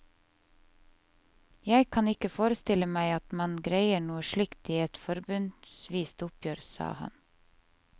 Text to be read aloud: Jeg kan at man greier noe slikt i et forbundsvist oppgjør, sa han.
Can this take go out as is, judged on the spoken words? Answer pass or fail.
fail